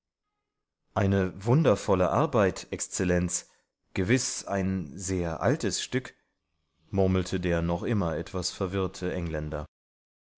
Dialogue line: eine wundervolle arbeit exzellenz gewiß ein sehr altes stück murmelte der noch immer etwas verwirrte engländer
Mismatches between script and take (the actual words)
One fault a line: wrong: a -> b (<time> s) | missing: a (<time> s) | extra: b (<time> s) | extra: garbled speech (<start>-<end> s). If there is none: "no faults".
no faults